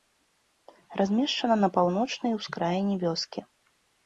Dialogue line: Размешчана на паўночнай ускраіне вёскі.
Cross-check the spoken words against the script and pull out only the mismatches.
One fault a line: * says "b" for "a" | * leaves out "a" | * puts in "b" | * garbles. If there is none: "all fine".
all fine